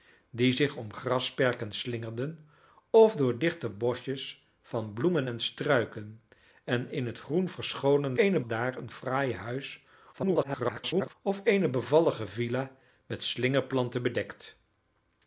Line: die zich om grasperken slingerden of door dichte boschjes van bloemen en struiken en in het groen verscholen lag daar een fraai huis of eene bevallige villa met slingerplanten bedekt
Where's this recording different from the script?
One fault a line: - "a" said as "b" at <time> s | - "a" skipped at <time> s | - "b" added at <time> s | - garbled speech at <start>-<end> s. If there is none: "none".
- "lag" said as "eene" at 8.1 s
- garbled speech at 10.1-11.1 s